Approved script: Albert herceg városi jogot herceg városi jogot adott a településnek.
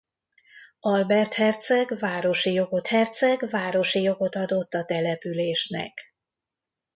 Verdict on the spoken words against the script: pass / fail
pass